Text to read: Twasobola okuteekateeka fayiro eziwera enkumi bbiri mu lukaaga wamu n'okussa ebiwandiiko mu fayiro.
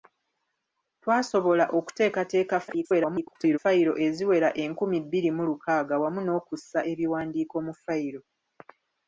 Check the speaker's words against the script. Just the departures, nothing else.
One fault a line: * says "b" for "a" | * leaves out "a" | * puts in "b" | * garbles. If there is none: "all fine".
* garbles